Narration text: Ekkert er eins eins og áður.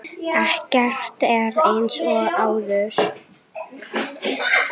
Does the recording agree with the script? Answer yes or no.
no